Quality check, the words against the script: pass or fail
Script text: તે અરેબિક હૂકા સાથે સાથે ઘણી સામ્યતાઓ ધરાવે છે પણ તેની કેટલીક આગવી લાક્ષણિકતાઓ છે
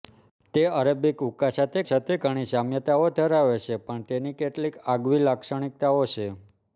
pass